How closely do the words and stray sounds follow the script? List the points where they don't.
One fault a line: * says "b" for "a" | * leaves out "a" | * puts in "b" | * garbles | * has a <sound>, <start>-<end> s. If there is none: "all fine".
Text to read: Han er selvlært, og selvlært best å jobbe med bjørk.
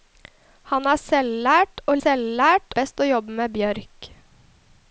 all fine